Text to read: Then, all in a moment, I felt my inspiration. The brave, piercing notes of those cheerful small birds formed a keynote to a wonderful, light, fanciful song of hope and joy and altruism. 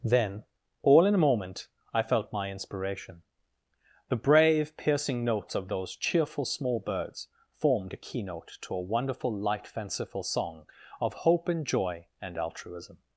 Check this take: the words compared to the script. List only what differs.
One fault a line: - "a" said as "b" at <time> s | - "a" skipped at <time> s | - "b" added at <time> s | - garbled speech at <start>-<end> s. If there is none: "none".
none